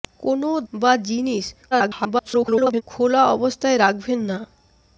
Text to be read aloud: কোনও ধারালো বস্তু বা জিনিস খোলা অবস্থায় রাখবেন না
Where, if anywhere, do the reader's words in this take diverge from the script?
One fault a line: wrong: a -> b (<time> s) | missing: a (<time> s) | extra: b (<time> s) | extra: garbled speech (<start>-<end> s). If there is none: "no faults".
missing: ধারালো বস্তু (0.5 s)
extra: garbled speech (1.7-2.8 s)